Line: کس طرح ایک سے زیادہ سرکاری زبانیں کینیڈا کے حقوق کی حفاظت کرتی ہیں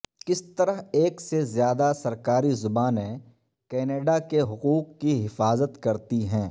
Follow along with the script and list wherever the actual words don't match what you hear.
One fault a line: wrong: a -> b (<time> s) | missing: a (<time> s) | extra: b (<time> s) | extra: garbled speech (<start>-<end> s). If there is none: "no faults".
no faults